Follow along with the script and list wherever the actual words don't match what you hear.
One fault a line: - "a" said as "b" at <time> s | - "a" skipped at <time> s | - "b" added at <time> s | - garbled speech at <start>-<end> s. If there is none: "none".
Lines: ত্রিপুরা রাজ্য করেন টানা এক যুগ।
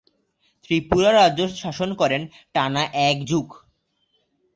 - "শাসন" added at 1.6 s